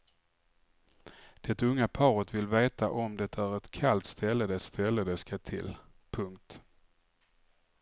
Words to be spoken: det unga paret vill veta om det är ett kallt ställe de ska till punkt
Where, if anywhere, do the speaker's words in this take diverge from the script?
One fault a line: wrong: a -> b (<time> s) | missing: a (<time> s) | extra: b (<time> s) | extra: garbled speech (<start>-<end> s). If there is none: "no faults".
extra: ställe de (4.6 s)